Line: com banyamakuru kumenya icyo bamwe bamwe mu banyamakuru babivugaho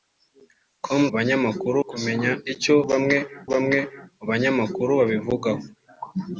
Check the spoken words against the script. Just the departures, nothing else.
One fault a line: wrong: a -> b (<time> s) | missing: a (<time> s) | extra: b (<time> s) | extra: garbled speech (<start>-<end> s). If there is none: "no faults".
no faults